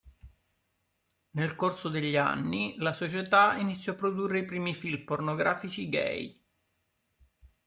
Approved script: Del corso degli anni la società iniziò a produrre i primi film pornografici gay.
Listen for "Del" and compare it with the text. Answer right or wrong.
wrong